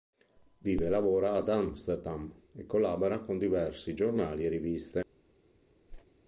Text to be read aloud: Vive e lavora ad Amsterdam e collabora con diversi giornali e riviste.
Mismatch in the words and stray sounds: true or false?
true